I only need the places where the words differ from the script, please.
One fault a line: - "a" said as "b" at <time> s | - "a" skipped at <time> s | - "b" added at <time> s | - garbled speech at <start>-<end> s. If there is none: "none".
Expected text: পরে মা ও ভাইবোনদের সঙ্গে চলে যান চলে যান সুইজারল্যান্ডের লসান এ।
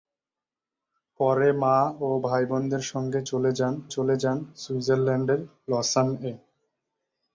none